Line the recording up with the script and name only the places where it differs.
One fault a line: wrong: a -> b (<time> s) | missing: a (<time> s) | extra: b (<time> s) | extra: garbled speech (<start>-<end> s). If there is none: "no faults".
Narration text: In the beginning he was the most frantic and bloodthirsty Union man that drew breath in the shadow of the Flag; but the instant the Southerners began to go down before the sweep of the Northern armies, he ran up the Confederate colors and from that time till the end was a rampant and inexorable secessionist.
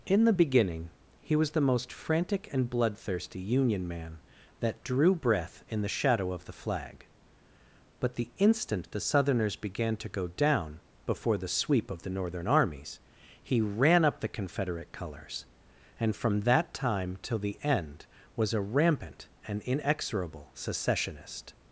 no faults